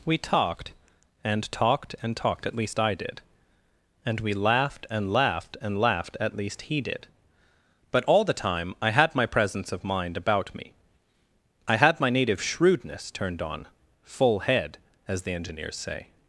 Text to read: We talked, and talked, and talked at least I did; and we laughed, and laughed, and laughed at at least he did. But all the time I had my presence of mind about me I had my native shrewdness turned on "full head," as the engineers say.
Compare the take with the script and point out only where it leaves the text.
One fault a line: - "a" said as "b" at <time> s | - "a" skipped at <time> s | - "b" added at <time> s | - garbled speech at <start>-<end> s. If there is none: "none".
- "at" skipped at 6.3 s